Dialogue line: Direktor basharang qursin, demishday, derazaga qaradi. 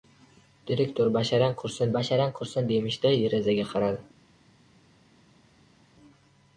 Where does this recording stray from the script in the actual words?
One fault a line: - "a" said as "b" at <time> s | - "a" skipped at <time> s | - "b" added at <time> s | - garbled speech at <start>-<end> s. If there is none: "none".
- "basharang qursin" added at 2.0 s